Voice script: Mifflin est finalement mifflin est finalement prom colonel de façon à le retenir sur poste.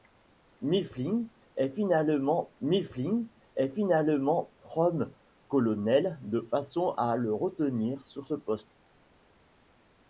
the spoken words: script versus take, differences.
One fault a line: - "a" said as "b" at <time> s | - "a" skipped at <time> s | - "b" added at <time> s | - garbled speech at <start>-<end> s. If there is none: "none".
none